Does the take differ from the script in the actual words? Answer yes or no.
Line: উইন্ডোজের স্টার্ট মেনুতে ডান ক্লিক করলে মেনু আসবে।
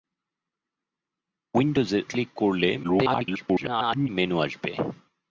yes